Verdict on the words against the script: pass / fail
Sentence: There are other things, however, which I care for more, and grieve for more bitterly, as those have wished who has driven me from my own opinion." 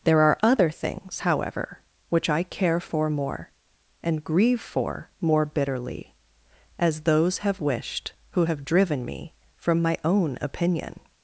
fail